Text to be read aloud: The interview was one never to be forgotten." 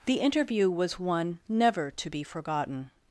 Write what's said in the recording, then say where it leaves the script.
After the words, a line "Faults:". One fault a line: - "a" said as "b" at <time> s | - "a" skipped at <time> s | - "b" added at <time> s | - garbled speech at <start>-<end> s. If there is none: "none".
The interview was one never to be forgotten."
Faults:
none